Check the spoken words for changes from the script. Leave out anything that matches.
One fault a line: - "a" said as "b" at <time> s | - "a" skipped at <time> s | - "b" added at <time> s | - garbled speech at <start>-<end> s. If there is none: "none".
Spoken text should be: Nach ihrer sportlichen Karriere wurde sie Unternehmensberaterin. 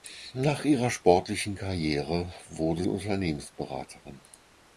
- "sie" skipped at 2.9 s